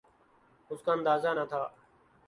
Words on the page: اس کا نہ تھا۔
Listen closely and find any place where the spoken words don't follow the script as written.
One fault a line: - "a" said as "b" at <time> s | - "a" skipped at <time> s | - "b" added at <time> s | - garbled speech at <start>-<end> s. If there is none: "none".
- "اندازہ" added at 0.9 s